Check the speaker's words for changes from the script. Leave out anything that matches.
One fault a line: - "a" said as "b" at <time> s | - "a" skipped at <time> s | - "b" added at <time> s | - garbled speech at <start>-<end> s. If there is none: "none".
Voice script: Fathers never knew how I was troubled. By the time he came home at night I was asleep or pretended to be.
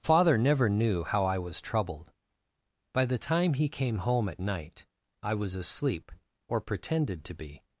- "Fathers" said as "Father" at 0.0 s